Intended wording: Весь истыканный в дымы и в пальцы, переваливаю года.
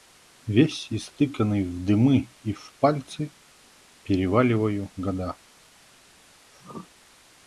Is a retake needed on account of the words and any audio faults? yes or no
yes